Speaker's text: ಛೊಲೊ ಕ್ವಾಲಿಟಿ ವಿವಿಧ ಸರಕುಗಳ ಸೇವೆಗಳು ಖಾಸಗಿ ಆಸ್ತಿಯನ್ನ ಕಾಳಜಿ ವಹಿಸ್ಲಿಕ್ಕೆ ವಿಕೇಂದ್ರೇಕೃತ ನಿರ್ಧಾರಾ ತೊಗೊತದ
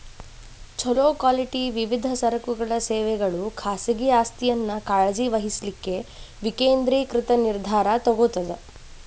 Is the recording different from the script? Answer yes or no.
no